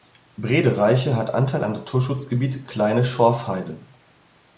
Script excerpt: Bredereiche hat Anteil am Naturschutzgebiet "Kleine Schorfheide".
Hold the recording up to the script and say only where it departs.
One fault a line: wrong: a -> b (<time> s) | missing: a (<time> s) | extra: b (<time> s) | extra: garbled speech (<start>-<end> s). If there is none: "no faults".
no faults